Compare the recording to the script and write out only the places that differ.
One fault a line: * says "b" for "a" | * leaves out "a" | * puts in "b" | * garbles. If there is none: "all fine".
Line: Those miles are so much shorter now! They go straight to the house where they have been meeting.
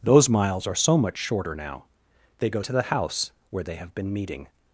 * leaves out "straight"